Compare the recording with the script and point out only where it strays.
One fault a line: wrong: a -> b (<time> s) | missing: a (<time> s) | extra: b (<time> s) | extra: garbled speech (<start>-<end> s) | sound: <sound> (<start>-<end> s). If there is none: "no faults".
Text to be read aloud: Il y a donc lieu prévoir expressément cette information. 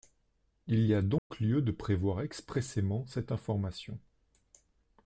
sound: dropout (1.2-1.3 s)
extra: de (1.6 s)